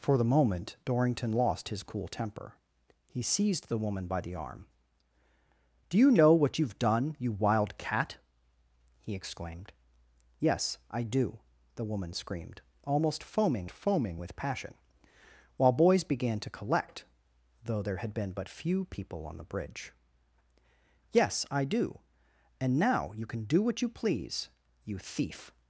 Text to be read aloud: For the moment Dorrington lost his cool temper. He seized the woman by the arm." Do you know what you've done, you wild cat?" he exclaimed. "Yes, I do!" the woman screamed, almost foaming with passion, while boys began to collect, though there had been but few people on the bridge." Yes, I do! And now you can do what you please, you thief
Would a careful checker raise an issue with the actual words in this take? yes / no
yes